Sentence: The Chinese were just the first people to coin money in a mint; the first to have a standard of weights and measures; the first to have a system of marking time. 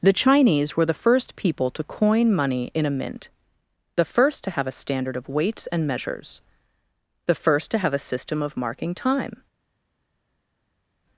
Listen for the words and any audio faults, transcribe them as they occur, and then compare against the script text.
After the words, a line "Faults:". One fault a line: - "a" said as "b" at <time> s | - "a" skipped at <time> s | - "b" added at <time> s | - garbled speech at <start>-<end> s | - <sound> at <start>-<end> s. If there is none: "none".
The Chinese were the first people to coin money in a mint; the first to have a standard of weights and measures; the first to have a system of marking time.
Faults:
- "just" skipped at 0.9 s